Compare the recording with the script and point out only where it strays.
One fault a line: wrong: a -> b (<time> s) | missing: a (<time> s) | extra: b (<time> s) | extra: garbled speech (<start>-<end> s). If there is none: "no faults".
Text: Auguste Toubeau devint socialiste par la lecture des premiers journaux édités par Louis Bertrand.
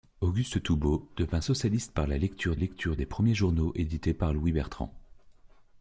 extra: lecture (2.5 s)